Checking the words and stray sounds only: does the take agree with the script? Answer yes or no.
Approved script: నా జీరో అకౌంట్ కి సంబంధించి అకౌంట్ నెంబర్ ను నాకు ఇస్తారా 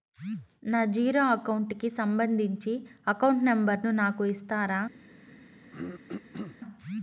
no